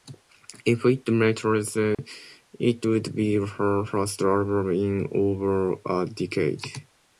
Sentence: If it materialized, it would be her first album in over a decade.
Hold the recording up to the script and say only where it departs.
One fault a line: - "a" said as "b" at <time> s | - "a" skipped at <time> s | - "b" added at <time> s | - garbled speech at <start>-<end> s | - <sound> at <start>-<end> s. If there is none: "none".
- dropout at 1.9-2.0 s